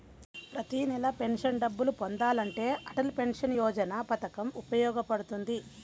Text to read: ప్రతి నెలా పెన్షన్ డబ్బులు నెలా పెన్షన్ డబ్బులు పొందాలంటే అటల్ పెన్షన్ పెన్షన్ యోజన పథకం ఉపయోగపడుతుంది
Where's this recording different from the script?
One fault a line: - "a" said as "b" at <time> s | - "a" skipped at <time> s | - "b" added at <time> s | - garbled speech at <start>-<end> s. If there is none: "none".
- "నెలా పెన్షన్ డబ్బులు" skipped at 1.9 s
- "పెన్షన్" skipped at 3.5 s